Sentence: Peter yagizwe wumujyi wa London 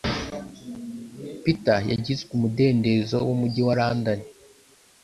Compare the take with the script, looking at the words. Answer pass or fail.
fail